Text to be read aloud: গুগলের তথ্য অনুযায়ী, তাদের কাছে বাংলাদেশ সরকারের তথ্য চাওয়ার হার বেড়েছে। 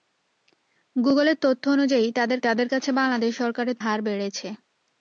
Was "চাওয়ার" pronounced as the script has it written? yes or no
no